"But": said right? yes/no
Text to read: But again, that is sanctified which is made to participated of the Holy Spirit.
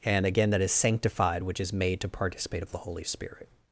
no